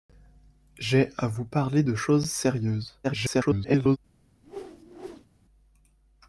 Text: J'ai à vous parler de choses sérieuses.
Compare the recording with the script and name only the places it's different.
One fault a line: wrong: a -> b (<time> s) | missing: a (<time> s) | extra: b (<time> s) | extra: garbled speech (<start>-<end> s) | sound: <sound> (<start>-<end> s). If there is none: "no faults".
extra: garbled speech (3.0-4.0 s)
sound: whoosh (4.4-5.3 s)